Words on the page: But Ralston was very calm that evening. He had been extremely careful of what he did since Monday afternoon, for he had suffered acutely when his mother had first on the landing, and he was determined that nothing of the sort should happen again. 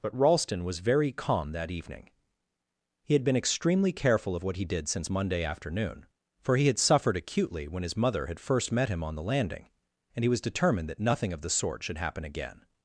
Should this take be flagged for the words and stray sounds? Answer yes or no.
yes